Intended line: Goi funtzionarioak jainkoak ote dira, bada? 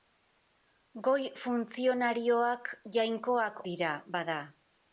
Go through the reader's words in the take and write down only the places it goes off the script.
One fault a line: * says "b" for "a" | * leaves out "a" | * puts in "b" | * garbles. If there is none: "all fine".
* leaves out "ote"